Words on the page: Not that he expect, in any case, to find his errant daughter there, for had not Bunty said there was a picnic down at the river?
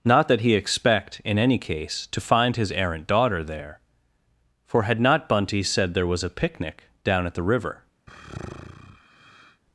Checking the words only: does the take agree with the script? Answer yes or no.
yes